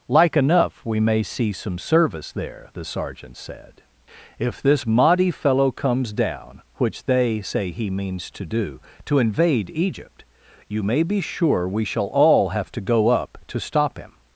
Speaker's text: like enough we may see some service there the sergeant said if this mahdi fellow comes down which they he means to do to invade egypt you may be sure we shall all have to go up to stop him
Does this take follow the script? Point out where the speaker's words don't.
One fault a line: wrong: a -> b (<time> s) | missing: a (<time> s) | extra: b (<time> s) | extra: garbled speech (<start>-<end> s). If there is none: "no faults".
extra: say (7.4 s)